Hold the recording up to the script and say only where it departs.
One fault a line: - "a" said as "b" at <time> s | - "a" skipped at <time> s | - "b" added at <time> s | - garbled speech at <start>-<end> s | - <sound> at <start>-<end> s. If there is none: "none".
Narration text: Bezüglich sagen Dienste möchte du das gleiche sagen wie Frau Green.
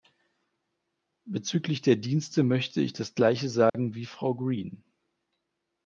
- "sagen" said as "der" at 1.8 s
- "du" said as "ich" at 2.8 s
- dropout at 3.7-3.7 s